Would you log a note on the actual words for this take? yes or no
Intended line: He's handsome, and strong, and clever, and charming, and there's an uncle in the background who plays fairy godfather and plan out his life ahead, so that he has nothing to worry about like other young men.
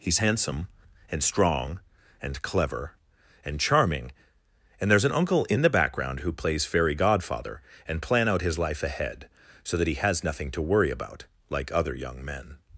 no